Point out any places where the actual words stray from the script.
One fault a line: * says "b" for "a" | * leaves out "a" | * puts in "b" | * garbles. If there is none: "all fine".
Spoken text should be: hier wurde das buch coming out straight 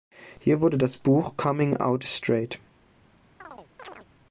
all fine